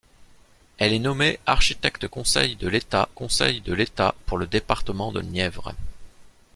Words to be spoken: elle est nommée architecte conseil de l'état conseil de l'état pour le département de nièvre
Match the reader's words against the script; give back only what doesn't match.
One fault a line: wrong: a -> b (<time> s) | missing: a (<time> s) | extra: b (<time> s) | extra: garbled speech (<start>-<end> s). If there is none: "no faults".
no faults